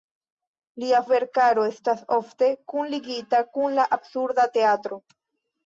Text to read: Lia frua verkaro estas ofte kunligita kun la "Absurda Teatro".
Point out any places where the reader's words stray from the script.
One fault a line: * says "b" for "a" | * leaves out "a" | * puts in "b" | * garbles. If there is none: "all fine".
* leaves out "frua"